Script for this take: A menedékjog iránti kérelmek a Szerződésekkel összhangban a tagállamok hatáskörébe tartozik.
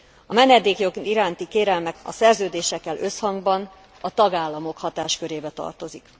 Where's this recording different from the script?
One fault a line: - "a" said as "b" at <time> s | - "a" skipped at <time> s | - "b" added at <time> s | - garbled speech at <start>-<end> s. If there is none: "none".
none